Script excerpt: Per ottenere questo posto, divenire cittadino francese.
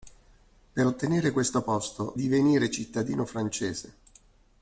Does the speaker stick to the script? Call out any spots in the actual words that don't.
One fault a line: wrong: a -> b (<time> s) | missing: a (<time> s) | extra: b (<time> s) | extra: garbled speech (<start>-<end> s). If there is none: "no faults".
no faults